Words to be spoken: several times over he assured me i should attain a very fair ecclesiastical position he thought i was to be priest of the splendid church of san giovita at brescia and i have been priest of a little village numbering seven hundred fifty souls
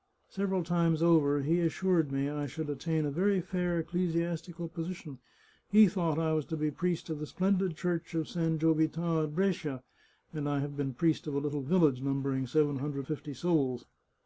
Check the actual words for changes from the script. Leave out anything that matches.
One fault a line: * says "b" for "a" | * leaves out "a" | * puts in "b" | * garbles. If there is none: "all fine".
all fine